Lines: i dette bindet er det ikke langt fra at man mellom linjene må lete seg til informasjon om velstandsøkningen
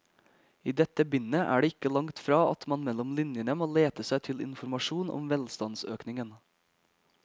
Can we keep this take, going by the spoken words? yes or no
yes